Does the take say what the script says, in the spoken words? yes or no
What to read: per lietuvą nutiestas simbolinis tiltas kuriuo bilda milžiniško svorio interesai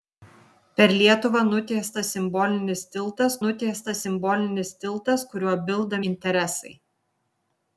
no